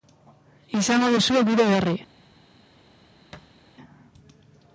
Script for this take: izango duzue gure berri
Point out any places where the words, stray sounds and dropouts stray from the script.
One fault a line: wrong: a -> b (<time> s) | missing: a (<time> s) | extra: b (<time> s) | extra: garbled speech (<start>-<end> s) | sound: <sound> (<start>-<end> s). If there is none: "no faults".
sound: thud (3.3-3.6 s)